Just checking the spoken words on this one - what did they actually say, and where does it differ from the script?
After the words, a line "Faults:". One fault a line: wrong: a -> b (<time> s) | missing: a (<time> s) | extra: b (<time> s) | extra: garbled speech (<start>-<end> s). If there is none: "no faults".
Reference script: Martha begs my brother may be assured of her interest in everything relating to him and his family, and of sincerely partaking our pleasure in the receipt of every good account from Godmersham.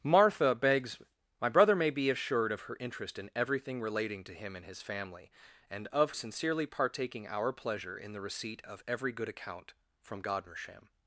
Martha begs my brother may be assured of her interest in everything relating to him and his family, and of sincerely partaking our pleasure in the receipt of every good account from Godmersham.
Faults:
no faults